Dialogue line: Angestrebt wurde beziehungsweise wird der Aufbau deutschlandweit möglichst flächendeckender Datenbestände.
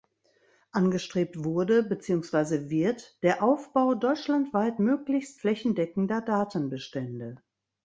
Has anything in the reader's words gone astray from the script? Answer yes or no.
no